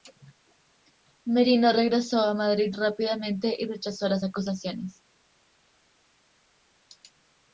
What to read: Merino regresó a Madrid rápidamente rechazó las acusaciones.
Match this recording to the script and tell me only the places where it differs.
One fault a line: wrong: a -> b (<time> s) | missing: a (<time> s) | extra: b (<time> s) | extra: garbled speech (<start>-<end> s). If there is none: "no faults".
extra: y (3.5 s)